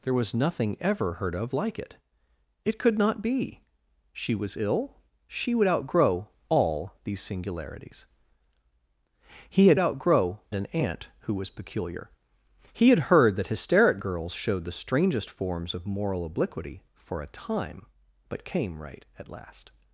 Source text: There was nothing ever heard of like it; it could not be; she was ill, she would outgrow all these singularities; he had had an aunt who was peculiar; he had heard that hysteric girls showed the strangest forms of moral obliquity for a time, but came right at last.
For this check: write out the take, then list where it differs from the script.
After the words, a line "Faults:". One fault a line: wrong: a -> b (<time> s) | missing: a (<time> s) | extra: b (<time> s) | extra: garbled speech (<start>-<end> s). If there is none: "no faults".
There was nothing ever heard of like it; it could not be; she was ill, she would outgrow all these singularities; he had outgrow an aunt who was peculiar; he had heard that hysteric girls showed the strangest forms of moral obliquity for a time, but came right at last.
Faults:
wrong: had -> outgrow (9.8 s)